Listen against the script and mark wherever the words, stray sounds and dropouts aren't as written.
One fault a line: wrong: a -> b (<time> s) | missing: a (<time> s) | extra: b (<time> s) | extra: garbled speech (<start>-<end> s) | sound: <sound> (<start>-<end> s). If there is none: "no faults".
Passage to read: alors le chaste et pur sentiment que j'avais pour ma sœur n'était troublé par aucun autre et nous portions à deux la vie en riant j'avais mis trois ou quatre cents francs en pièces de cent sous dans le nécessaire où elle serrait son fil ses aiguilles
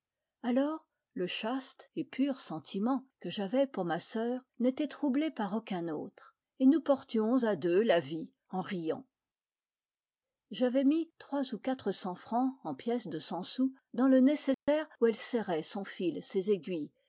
sound: dropout (14.5-14.7 s)